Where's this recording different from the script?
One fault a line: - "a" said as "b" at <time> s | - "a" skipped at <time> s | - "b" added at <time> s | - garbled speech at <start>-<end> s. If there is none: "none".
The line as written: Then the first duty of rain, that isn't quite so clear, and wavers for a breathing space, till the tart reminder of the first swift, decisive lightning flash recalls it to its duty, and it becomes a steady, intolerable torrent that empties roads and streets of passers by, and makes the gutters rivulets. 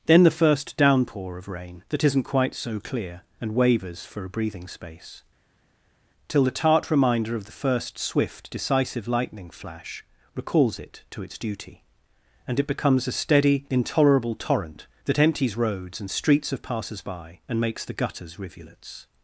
- "duty" said as "downpour" at 0.8 s